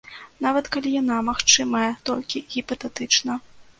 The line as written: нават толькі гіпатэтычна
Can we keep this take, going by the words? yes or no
no